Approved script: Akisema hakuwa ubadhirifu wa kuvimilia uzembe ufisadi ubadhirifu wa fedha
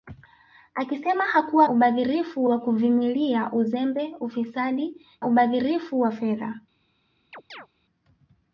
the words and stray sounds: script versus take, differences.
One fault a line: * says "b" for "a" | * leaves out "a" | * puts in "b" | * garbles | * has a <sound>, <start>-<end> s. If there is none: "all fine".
* has a chirp, 7.3-7.7 s